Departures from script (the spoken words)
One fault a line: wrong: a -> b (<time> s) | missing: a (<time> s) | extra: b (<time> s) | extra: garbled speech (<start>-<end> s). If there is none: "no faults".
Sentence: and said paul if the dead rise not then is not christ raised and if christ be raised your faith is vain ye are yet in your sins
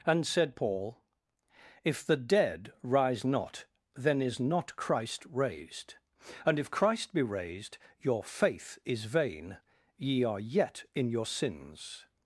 no faults